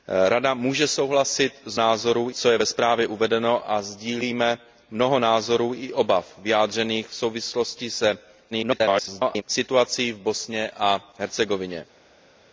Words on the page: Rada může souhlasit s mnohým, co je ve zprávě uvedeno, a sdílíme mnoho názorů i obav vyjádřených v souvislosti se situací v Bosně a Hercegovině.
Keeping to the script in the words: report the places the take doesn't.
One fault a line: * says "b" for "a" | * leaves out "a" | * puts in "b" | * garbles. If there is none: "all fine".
* says "názorů" for "mnohým"
* garbles